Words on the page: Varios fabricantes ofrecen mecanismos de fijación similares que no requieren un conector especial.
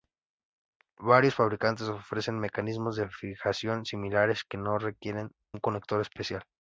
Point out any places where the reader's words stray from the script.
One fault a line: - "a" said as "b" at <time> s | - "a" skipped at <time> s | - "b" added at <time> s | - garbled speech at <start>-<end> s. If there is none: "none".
none